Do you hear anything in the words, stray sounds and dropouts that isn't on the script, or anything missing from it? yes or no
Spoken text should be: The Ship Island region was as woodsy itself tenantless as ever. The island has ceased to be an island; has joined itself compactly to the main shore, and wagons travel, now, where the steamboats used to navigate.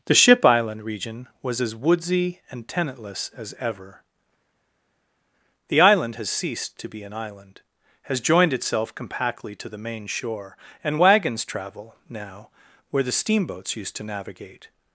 yes